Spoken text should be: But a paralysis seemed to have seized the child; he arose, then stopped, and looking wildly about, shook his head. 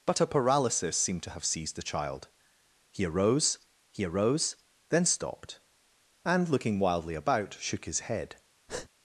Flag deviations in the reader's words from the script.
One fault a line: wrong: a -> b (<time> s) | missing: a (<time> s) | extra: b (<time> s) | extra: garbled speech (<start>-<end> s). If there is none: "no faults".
extra: he arose (3.9 s)